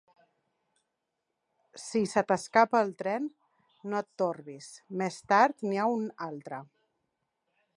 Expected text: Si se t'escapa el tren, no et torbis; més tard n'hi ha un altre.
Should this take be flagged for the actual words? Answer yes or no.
no